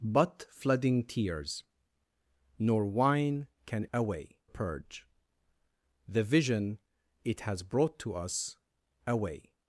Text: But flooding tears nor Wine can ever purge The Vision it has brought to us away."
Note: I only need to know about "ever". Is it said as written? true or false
false